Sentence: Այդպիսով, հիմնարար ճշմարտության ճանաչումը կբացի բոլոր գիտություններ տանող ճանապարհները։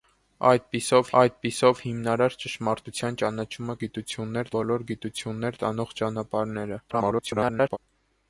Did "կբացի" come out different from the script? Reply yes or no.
yes